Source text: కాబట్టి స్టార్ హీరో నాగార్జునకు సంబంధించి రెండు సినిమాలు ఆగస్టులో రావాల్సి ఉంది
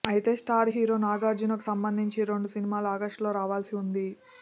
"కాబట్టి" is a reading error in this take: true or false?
true